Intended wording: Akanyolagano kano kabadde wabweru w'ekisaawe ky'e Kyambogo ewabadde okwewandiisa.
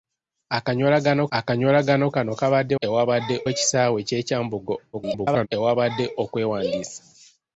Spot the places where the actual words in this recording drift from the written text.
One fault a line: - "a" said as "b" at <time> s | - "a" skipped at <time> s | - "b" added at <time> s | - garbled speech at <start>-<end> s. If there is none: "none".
- "akanyolagano" added at 1.4 s
- "wabweru" said as "ewabadde" at 2.8 s
- garbled speech at 4.9-5.5 s